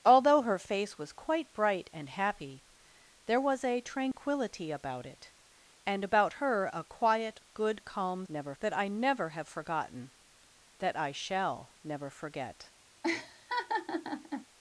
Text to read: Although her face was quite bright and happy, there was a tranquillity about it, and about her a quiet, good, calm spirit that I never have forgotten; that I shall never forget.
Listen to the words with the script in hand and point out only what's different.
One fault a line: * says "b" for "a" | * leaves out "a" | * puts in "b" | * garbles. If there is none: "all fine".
* says "never" for "spirit"